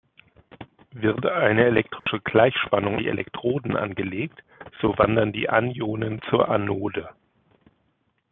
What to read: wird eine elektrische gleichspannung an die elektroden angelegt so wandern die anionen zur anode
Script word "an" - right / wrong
wrong